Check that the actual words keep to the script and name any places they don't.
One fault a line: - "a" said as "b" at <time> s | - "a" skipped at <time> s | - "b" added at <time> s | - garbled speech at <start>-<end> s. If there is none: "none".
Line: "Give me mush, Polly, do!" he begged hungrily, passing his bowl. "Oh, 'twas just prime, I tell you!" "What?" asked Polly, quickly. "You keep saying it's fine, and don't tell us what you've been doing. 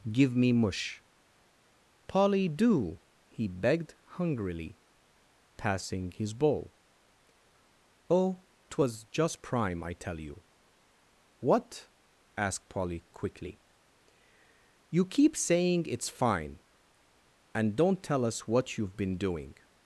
none